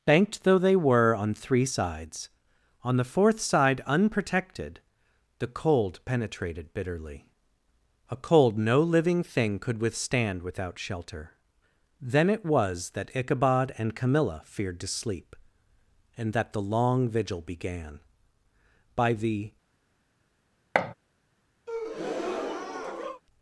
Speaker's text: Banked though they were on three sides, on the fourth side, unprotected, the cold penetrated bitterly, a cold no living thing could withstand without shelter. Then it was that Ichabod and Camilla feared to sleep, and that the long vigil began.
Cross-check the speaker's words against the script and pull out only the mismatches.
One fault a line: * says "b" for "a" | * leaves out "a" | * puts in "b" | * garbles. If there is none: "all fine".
* puts in "By the"